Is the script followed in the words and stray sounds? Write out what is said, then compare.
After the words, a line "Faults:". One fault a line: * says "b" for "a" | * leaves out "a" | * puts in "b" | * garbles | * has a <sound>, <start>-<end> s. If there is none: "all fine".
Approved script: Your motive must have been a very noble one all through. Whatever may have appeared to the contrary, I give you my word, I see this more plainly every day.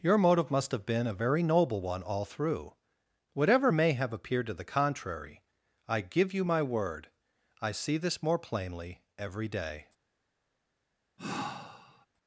Your motive must have been a very noble one all through. Whatever may have appeared to the contrary, I give you my word, I see this more plainly every day.
Faults:
* has a sigh, 11.2-12.1 s